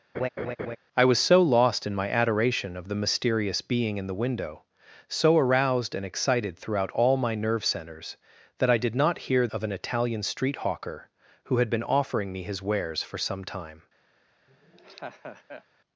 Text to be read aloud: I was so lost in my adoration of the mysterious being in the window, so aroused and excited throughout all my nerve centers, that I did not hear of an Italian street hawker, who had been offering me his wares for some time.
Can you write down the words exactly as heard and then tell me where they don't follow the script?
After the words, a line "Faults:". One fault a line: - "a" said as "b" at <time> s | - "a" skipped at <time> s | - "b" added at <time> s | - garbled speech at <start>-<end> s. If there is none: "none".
I was so lost in my adoration of the mysterious being in the window, so aroused and excited throughout all my nerve centers, that I did not hear of an Italian street hawker, who had been offering me his wares for some time.
Faults:
none